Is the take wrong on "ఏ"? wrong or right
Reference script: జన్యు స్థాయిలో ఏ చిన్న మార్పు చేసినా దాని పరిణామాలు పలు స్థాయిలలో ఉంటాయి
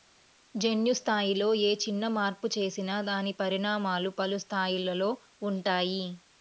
right